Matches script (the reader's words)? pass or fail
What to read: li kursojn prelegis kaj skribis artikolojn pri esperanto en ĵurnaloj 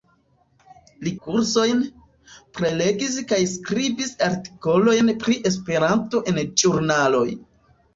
pass